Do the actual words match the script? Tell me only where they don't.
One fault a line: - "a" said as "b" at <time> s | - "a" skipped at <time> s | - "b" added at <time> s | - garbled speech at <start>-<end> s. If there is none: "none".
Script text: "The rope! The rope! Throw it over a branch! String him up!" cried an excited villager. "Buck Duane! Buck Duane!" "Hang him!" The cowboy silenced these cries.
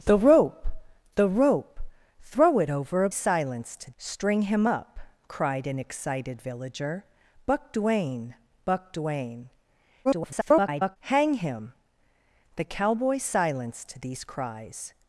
- "branch" said as "silenced" at 3.1 s
- garbled speech at 10.0-11.0 s